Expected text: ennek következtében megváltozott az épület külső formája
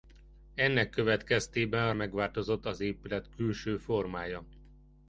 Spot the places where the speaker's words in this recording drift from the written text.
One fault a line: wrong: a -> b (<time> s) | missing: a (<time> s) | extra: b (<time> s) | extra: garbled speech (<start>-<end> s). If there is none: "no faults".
no faults